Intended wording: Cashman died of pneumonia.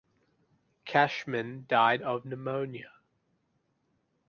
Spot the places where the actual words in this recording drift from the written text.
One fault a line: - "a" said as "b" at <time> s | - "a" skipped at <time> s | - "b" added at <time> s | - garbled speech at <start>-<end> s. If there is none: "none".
none